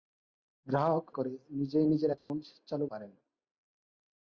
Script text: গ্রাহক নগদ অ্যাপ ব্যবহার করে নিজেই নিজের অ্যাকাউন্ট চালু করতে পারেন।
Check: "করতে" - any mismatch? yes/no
yes